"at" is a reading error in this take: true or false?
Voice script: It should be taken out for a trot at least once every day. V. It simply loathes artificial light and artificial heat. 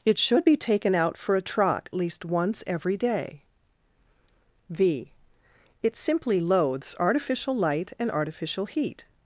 true